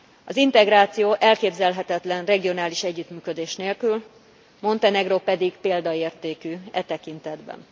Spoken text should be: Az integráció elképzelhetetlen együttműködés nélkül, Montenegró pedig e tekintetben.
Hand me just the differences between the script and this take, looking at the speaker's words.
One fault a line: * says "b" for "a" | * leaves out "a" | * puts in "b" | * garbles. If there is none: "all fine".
* puts in "regionális"
* puts in "példaértékű"